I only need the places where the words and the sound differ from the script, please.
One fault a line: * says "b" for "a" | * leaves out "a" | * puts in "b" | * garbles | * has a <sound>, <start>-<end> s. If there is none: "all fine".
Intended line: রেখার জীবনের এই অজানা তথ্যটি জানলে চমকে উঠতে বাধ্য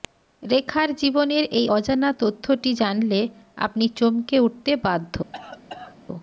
* puts in "আপনি"
* has a cough, 5.3-6.0 s